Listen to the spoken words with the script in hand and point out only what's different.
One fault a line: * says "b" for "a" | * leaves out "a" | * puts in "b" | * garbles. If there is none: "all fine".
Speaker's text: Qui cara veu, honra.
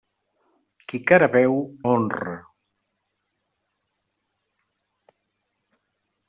all fine